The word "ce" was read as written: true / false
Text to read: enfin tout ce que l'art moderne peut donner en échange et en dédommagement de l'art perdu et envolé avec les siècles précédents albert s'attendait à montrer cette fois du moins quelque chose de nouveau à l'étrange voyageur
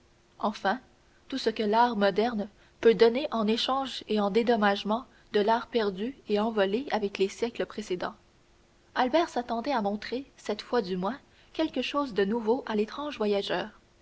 true